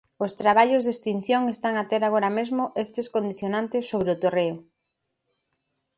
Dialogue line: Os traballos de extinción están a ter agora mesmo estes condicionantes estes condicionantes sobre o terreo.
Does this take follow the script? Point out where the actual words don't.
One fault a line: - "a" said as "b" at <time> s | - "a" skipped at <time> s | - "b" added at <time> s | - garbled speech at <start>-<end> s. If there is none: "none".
- "estes condicionantes" skipped at 3.8 s